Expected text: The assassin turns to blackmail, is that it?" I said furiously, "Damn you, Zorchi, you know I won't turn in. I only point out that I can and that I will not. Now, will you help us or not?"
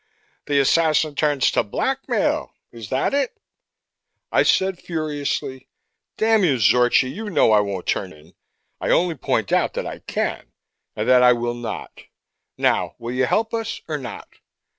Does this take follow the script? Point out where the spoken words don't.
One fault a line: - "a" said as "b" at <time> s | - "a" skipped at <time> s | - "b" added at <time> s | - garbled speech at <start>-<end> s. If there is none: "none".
none